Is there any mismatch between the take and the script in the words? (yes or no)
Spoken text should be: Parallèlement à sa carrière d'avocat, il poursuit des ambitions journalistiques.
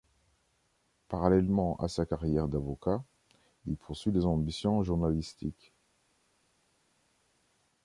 no